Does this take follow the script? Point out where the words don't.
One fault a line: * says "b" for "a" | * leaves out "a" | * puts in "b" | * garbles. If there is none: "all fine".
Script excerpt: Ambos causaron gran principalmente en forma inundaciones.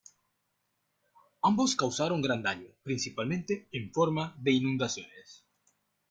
* puts in "daño"
* puts in "de"